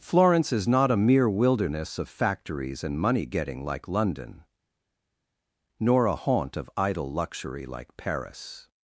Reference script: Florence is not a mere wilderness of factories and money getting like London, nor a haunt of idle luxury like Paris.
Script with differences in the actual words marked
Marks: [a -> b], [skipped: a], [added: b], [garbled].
Florence is not a mere wilderness of factories and money getting like London, nor a haunt of idle luxury like Paris.